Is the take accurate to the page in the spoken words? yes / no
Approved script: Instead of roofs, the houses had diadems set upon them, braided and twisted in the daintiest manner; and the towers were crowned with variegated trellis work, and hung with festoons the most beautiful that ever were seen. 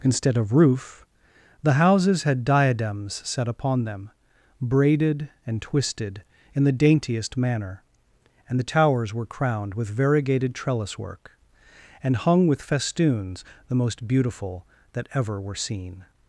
no